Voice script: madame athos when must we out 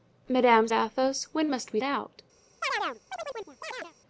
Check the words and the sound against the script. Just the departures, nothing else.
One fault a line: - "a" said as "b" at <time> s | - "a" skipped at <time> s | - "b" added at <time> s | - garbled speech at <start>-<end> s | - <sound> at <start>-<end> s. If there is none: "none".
- chirp at 2.6-3.9 s